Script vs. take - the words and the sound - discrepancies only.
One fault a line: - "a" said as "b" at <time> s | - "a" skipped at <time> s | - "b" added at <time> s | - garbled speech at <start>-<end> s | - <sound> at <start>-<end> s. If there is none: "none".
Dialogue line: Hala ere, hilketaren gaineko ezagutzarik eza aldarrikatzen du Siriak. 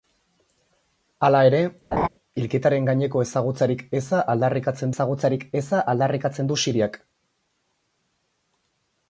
- laugh at 1.9-2.1 s
- "ezagutzarik eza aldarrikatzen" added at 4.9 s